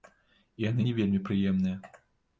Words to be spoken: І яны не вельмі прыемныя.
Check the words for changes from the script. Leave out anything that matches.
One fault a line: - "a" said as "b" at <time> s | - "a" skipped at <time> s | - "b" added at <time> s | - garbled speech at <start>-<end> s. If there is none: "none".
none